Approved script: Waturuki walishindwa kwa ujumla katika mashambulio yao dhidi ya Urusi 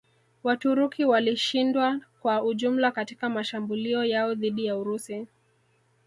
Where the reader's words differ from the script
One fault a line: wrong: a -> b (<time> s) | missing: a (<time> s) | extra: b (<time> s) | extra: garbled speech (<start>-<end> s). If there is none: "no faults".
no faults